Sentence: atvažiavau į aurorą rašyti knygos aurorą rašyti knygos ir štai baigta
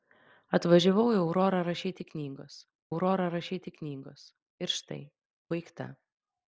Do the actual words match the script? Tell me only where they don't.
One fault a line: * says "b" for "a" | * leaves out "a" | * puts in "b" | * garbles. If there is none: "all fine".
all fine